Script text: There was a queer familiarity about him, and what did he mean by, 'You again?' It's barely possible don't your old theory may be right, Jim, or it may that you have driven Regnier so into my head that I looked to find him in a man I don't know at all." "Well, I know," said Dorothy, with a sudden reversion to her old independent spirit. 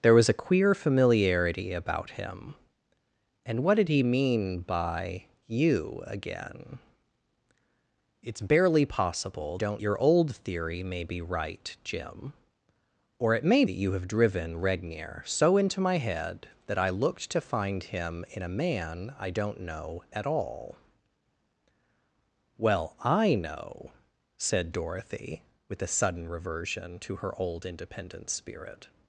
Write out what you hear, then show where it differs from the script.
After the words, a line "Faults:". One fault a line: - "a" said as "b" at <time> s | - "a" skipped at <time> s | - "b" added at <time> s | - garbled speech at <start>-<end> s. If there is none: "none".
There was a queer familiarity about him, and what did he mean by, 'You again?' It's barely possible don't your old theory may be right, Jim, or it may that you have driven Regnier so into my head that I looked to find him in a man I don't know at all." "Well, I know," said Dorothy, with a sudden reversion to her old independent spirit.
Faults:
none